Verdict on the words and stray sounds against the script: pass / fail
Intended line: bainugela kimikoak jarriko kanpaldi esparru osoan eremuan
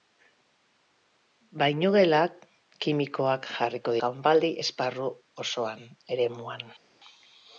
pass